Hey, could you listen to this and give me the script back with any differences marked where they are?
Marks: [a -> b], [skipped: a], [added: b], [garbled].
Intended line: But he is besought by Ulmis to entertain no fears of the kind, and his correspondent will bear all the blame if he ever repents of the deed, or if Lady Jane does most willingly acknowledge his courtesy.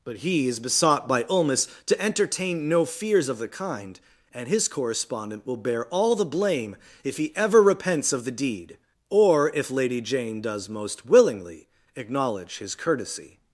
But he is besought by Ulmis to entertain no fears of the kind, and his correspondent will bear all the blame if he ever repents of the deed, or if Lady Jane does most willingly acknowledge his courtesy.